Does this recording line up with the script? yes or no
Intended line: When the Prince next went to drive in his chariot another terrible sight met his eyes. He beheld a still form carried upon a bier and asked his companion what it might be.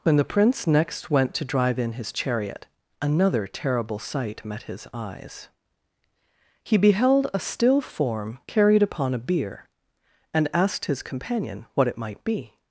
yes